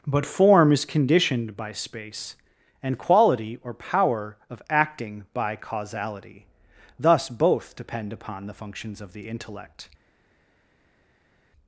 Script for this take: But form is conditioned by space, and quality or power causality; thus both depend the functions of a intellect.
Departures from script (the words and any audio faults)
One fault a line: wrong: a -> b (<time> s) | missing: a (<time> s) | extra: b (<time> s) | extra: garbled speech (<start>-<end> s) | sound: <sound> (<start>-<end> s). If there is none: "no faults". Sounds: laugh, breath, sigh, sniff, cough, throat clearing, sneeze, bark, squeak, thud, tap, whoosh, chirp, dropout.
extra: of acting by (4.5 s)
extra: upon (8.1 s)
wrong: a -> the (9.1 s)